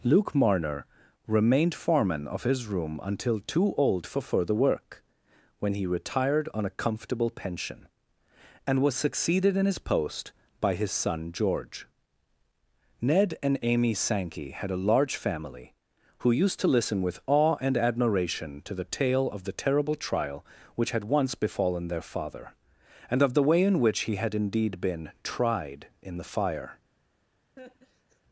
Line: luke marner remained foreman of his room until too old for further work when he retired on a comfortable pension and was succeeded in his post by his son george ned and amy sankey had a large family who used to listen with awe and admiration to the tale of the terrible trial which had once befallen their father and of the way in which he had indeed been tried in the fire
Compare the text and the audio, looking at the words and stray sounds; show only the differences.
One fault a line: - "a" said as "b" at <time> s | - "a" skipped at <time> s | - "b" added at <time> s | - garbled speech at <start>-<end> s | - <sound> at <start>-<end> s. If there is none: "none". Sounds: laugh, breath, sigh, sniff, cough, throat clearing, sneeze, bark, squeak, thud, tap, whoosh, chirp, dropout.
- laugh at 27.6-28.2 s